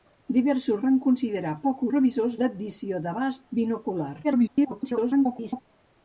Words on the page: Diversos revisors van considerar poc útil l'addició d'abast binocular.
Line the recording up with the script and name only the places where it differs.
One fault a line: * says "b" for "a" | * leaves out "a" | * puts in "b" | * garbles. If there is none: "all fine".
* leaves out "revisors"
* says "revisors" for "útil"
* garbles